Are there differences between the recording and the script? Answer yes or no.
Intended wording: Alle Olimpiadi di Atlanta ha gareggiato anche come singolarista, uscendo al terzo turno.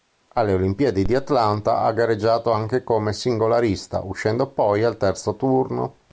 yes